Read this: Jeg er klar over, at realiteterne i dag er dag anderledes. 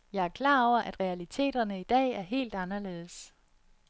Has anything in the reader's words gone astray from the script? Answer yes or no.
yes